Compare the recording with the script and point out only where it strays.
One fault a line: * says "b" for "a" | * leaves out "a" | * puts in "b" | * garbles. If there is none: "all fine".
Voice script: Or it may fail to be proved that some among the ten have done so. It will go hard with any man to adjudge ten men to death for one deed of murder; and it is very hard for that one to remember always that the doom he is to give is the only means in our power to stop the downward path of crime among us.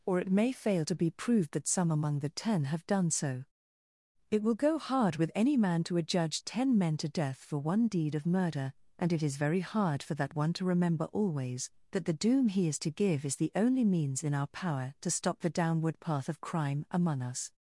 all fine